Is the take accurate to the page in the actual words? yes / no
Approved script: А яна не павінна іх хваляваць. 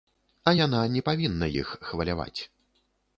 yes